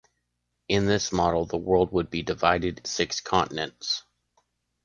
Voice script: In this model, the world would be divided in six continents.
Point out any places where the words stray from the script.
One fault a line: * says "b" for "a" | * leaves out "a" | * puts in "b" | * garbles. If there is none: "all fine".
* leaves out "in"